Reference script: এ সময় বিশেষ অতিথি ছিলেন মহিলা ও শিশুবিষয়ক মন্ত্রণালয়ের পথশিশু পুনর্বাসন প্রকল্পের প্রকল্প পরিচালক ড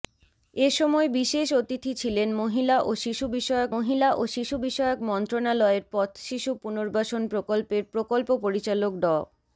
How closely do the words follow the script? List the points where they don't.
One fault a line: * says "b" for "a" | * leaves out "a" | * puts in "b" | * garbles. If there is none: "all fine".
* puts in "মহিলা ও শিশুবিষয়ক"